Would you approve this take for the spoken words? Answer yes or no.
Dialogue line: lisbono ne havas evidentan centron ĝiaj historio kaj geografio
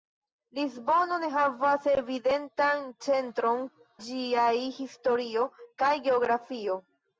yes